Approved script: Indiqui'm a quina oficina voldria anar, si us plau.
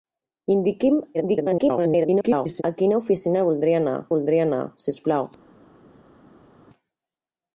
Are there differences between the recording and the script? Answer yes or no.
yes